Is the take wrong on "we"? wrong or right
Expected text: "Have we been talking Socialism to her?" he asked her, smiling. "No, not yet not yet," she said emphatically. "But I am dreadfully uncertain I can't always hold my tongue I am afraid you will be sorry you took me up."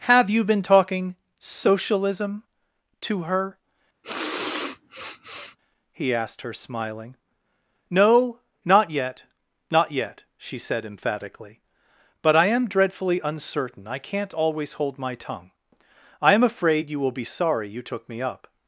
wrong